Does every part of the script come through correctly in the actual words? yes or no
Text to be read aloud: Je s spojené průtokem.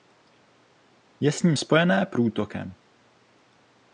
no